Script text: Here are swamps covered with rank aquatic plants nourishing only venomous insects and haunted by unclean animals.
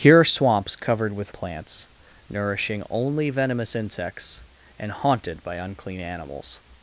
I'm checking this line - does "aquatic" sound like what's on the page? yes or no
no